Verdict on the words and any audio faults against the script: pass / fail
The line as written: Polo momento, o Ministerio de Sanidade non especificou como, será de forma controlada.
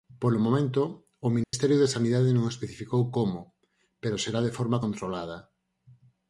fail